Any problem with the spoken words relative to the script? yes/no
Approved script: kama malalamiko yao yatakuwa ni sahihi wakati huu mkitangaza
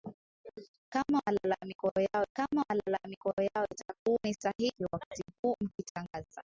yes